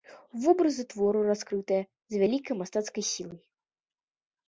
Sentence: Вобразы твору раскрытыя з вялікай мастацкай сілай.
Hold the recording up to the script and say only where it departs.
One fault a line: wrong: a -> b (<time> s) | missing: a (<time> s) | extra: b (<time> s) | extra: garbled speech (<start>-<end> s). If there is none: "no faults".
no faults